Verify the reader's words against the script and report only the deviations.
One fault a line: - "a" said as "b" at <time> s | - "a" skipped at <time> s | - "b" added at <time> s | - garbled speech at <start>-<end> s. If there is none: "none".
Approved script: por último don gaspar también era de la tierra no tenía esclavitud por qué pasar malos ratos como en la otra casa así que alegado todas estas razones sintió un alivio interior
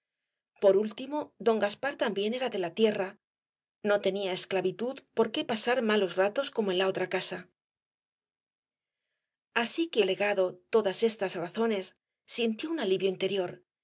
none